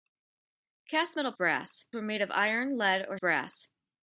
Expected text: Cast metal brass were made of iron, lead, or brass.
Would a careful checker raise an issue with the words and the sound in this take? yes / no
no